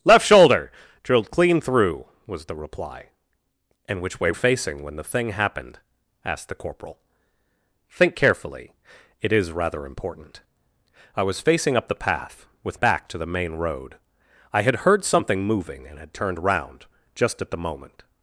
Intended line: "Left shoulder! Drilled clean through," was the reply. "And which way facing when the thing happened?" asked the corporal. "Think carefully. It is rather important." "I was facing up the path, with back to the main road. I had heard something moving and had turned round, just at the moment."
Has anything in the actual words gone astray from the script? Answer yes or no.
no